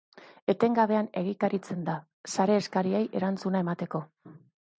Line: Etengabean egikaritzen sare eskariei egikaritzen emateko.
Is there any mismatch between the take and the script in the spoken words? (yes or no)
yes